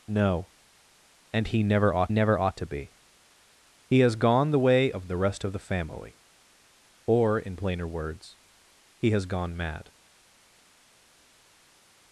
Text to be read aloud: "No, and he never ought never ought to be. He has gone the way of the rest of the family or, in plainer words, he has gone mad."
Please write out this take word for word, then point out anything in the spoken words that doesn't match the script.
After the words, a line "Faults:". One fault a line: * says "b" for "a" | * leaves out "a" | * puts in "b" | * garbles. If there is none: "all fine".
"No, and he never ought never ought to be. He has gone the way of the rest of the family or, in plainer words, he has gone mad."
Faults:
all fine